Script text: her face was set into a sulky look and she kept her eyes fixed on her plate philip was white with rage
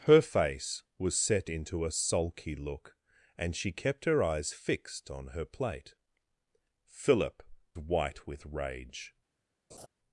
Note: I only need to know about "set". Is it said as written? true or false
true